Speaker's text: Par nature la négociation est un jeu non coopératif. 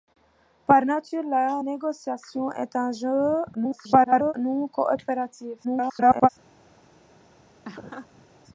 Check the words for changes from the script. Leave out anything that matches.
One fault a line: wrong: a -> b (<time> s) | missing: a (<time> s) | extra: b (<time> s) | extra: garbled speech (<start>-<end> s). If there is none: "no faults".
extra: garbled speech (3.5-4.3 s)
extra: garbled speech (5.6-6.3 s)